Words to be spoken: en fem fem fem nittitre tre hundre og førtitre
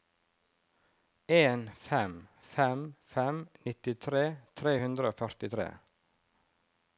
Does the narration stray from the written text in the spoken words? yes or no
no